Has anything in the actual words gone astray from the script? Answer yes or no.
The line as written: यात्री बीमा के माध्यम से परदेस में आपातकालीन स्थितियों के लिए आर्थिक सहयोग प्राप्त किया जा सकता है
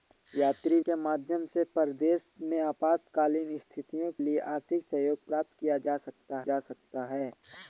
yes